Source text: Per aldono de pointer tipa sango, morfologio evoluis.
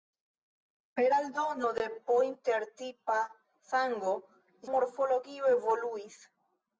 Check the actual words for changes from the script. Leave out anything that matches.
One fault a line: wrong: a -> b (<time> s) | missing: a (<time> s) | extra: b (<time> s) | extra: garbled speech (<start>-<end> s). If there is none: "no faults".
no faults